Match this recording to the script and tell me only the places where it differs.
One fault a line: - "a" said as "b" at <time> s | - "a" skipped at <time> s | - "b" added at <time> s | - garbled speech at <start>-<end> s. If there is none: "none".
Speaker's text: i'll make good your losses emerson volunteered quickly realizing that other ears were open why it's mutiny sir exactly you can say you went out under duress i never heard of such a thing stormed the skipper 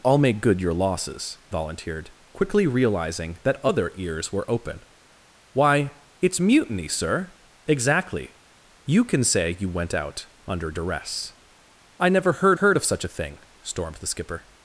- "emerson" skipped at 1.4 s
- "heard" added at 12.5 s